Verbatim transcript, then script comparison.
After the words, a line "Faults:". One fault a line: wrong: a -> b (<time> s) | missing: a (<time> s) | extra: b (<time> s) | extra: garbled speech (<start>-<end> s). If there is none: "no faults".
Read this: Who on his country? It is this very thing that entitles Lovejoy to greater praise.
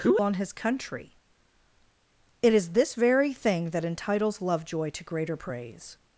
Who on his country? It is this very thing that entitles Lovejoy to greater praise.
Faults:
no faults